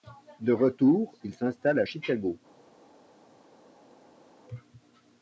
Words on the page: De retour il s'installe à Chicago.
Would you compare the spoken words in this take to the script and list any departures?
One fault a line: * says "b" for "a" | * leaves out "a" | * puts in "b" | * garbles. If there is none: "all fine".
all fine